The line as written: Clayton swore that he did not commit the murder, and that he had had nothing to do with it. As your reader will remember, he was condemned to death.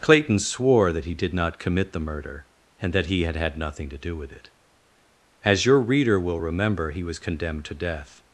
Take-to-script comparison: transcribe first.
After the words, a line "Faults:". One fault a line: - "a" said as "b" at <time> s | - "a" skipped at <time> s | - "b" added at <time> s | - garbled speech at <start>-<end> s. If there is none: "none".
Clayton swore that he did not commit the murder, and that he had had nothing to do with it. As your reader will remember, he was condemned to death.
Faults:
none